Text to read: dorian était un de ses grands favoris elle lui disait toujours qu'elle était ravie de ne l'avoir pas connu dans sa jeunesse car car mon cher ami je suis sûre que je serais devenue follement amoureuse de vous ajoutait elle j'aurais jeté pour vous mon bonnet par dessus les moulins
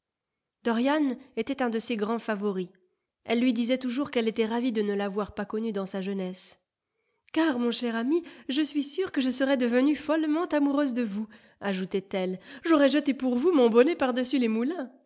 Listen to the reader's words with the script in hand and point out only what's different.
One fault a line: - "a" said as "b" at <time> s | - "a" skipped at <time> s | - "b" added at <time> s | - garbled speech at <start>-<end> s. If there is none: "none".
- "car" skipped at 7.6 s